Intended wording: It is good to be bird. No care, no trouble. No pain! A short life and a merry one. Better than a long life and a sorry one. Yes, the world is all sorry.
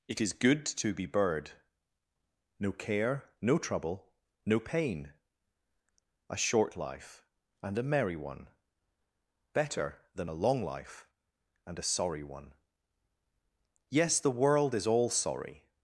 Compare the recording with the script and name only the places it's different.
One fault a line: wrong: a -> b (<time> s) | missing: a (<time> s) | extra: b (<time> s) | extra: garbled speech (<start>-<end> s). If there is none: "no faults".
no faults